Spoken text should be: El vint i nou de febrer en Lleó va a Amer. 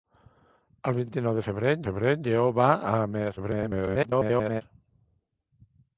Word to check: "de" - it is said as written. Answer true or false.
true